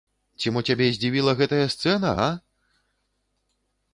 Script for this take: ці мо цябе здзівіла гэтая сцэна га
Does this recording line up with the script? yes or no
yes